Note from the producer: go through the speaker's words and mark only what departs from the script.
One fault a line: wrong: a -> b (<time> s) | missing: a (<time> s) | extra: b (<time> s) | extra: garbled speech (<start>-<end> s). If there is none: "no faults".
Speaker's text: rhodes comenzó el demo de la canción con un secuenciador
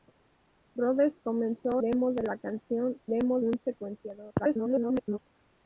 missing: el (1.8 s)
wrong: con -> demo (3.1 s)
extra: garbled speech (4.4-5.2 s)